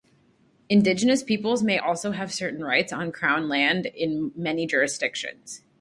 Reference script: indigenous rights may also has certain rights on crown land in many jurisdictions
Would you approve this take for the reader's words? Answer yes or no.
no